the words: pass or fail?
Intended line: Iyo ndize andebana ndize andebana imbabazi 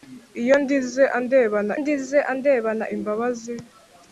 pass